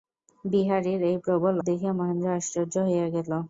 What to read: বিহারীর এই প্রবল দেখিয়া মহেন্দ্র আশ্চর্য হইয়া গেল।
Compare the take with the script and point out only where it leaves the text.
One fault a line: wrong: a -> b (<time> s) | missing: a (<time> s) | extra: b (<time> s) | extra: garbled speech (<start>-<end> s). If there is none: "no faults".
no faults